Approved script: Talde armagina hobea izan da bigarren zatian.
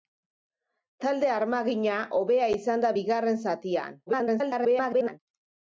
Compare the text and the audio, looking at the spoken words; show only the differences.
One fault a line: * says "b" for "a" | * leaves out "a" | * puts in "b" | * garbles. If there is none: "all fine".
* garbles